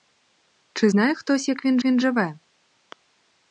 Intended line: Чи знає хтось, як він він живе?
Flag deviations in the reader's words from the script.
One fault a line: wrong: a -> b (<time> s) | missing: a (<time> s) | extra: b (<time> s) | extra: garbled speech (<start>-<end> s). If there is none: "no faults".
no faults